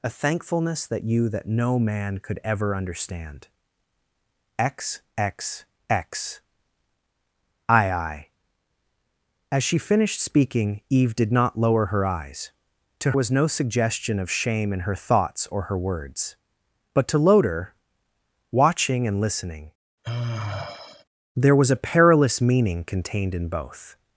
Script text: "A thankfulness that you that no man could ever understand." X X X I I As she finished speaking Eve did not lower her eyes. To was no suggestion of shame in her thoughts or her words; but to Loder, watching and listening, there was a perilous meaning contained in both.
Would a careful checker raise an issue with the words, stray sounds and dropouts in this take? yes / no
yes